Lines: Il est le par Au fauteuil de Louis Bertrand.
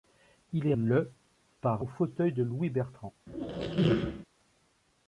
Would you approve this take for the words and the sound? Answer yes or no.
no